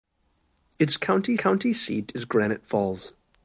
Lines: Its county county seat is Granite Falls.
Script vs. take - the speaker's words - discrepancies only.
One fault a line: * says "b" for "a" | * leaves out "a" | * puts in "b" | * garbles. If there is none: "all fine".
all fine